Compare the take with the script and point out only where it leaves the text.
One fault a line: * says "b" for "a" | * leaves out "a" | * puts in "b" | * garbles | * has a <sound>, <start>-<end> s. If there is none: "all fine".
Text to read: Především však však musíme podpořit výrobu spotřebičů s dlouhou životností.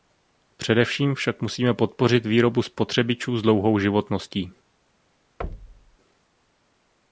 * leaves out "však"
* has a thud, 5.4-6.0 s